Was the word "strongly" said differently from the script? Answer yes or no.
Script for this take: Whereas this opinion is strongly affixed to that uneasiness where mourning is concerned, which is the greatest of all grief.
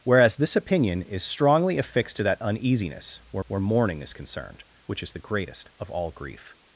no